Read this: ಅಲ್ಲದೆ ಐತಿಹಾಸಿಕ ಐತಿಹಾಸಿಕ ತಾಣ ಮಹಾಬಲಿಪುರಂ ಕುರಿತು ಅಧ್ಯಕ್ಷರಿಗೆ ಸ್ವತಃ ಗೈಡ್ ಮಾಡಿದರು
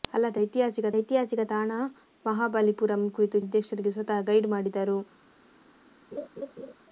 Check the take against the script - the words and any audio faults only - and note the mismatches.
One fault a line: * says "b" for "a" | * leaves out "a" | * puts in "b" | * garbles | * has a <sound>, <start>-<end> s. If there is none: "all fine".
* has a laugh, 6.1-6.7 s